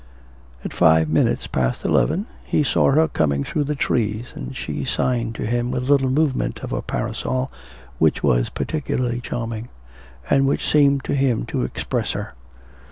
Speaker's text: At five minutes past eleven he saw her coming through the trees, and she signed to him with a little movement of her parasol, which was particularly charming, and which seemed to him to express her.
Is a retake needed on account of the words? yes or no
no